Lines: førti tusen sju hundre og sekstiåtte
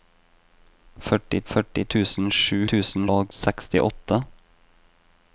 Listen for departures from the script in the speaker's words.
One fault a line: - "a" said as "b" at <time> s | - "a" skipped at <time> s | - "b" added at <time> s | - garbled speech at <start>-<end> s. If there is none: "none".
- "førti" added at 1.5 s
- "hundre" said as "tusen" at 2.7 s